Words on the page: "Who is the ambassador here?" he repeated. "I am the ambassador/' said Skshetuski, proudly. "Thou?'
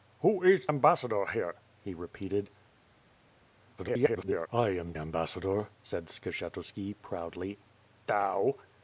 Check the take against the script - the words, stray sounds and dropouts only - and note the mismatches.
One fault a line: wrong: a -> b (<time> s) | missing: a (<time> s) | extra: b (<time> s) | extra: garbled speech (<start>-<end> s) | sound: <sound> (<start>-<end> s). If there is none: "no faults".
missing: the (0.7 s)
extra: garbled speech (3.8-4.5 s)
missing: the (4.9 s)